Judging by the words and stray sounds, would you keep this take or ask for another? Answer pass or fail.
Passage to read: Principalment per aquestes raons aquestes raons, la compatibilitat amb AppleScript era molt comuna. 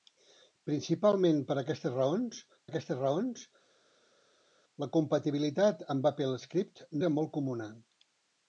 pass